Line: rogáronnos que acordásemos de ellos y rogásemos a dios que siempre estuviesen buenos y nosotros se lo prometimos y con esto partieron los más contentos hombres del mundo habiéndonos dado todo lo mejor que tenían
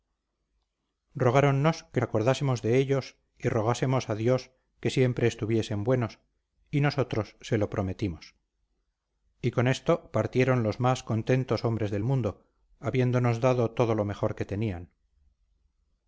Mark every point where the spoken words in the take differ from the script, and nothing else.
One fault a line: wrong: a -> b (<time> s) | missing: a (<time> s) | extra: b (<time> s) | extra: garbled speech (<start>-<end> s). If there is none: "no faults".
no faults